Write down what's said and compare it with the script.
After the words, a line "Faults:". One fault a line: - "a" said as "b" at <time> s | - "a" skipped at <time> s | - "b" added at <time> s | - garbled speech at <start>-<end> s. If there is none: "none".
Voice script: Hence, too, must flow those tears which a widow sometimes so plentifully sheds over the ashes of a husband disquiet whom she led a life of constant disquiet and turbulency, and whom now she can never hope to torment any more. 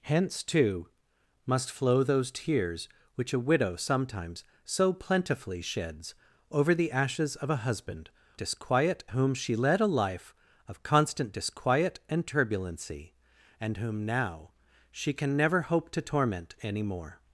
Hence, too, must flow those tears which a widow sometimes so plentifully sheds over the ashes of a husband disquiet whom she led a life of constant disquiet and turbulency, and whom now she can never hope to torment any more.
Faults:
none